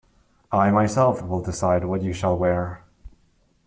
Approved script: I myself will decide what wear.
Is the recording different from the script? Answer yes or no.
yes